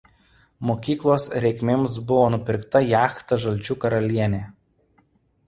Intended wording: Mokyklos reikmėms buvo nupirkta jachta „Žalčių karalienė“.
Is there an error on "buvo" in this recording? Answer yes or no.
no